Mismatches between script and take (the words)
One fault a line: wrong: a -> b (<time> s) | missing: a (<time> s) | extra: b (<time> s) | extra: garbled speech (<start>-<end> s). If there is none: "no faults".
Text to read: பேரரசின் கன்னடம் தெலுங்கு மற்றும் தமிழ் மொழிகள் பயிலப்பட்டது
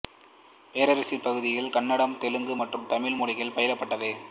extra: பகுதிகளில் (1.2 s)